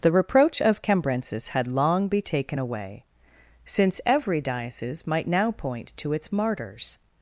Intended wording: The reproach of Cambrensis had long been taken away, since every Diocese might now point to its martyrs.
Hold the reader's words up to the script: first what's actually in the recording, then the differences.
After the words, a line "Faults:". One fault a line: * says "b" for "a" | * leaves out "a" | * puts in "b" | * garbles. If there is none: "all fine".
The reproach of Cambrensis had long be taken away, since every Diocese might now point to its martyrs.
Faults:
* says "be" for "been"